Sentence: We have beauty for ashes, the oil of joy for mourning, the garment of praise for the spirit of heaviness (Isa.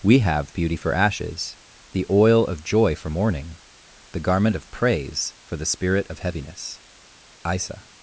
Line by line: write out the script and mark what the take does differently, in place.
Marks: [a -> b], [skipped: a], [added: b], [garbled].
We have beauty for ashes, the oil of joy for mourning, the garment of praise for the spirit of heaviness (Isa.